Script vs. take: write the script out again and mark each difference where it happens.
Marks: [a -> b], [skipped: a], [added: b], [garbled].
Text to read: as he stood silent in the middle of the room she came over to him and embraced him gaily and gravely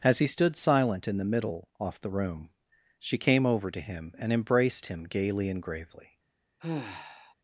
as he stood silent in the middle [of -> off] the room she came over to him and embraced him gaily and gravely